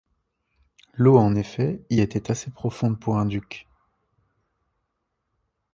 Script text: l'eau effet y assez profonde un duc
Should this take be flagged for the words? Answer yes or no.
yes